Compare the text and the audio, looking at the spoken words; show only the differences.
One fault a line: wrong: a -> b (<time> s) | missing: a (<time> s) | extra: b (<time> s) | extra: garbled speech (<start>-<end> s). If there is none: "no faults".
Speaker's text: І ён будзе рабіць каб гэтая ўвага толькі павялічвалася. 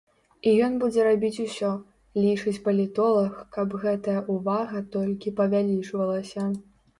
extra: усё лічыць палітолаг (1.4 s)